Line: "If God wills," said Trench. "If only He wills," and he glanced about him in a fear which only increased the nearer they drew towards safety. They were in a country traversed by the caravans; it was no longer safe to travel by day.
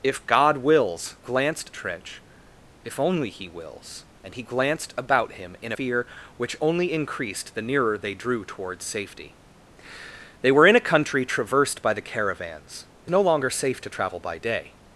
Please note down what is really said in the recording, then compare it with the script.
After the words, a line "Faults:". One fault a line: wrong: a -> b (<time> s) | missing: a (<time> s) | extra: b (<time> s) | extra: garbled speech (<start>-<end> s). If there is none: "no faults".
"If God wills," glanced Trench. "If only He wills," and he glanced about him in fear which only increased the nearer they drew towards safety. They were in a country traversed by the caravans; it no longer safe to travel by day.
Faults:
wrong: said -> glanced (1.2 s)
missing: a (5.7 s)
missing: was (13.1 s)